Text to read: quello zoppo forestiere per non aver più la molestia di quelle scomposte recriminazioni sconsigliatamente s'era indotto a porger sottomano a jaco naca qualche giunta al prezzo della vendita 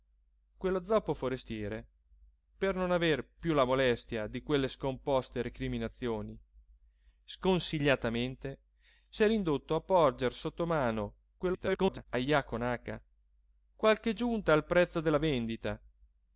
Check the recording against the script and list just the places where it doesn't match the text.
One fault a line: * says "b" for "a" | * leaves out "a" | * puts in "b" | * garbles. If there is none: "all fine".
* garbles